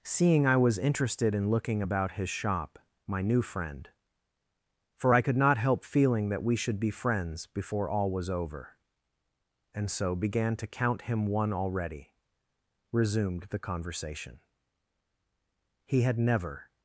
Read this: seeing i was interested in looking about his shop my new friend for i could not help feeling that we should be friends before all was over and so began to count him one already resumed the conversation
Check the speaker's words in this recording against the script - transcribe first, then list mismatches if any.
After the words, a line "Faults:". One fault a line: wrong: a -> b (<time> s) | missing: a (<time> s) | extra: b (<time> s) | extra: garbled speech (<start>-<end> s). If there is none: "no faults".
seeing i was interested in looking about his shop my new friend for i could not help feeling that we should be friends before all was over and so began to count him one already resumed the conversation he had never
Faults:
extra: he had never (15.9 s)